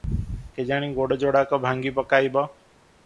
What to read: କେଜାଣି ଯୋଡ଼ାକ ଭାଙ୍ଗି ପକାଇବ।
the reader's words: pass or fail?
fail